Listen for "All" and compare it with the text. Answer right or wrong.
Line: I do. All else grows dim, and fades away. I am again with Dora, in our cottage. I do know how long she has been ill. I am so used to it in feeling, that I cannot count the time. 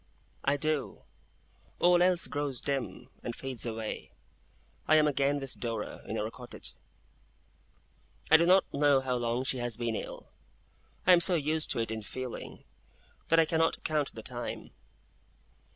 right